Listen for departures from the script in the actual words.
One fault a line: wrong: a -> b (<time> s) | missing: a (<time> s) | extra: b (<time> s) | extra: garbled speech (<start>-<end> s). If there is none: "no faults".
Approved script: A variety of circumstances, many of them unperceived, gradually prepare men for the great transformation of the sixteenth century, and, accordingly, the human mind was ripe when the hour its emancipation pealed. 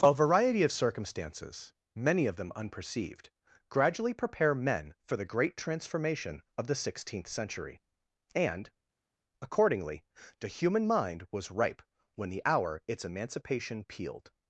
no faults